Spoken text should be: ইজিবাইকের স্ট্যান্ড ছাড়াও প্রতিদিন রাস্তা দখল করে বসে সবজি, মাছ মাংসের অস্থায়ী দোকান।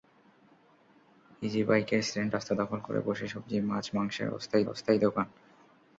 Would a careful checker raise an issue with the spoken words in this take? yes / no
yes